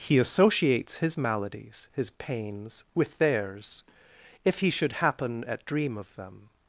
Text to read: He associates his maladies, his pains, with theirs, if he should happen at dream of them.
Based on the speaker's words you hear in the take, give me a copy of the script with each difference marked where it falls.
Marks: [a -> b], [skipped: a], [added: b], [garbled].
He associates his maladies, his pains, with theirs, if he should happen at dream of them.